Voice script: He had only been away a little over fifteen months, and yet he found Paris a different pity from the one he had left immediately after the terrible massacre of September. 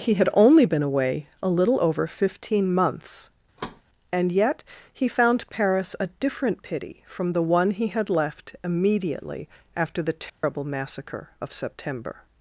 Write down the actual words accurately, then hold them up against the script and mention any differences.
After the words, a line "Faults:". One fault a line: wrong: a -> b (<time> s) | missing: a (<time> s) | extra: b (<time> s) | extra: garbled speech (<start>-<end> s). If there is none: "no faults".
He had only been away a little over fifteen months, and yet he found Paris a different pity from the one he had left immediately after the terrible massacre of September.
Faults:
no faults